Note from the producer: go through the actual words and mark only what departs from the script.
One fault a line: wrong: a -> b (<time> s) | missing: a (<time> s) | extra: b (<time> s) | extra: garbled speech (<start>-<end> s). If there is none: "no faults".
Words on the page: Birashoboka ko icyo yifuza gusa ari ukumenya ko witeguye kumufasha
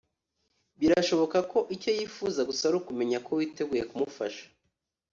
no faults